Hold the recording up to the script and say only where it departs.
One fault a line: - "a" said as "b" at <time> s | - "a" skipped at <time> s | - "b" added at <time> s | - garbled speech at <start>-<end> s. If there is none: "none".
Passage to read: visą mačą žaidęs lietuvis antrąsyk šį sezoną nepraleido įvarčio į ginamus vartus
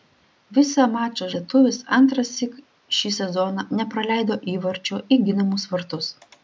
- "žaidęs" skipped at 1.3 s